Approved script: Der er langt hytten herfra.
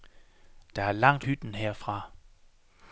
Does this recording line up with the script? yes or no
yes